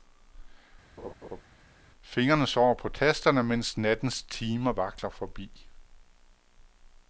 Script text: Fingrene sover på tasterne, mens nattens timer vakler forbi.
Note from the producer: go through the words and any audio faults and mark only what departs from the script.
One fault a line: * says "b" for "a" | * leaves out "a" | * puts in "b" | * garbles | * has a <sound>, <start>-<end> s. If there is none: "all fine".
* has a laugh, 1.0-1.4 s